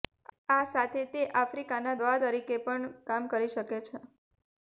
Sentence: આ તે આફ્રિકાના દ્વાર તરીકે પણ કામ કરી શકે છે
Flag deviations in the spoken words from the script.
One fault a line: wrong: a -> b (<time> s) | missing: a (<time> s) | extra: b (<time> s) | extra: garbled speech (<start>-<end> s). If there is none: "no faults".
extra: સાથે (0.7 s)